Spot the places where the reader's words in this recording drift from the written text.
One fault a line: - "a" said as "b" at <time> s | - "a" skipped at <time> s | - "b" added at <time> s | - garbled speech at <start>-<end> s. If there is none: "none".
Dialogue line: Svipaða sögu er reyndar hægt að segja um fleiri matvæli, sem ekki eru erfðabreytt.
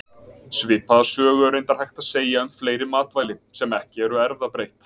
none